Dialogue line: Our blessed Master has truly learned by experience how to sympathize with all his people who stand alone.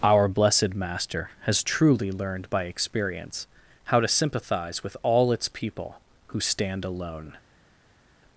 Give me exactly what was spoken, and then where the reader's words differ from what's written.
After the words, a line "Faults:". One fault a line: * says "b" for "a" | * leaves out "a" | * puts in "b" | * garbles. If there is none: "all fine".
Our blessed Master has truly learned by experience how to sympathize with all its people who stand alone.
Faults:
* says "its" for "his"